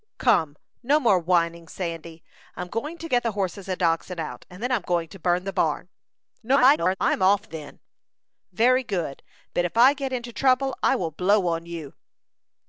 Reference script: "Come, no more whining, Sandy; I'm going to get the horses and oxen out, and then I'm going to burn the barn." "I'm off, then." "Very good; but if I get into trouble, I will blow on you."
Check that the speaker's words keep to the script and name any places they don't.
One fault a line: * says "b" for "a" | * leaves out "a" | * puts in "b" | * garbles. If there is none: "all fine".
* garbles